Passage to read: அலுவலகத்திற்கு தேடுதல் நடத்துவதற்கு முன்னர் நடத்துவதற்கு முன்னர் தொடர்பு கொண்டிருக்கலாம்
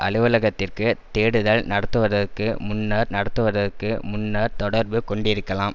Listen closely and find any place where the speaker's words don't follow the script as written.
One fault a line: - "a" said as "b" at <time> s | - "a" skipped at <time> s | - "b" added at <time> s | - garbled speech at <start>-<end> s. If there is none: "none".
none